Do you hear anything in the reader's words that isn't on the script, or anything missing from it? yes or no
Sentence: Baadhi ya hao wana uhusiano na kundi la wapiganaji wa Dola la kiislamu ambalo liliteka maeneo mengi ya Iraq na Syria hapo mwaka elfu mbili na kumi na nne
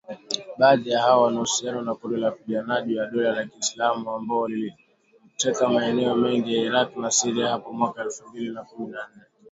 no